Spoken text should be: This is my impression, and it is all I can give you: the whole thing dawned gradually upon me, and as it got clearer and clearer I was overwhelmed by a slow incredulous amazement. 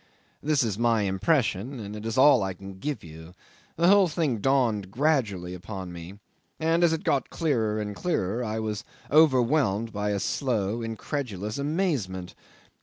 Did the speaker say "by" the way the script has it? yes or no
yes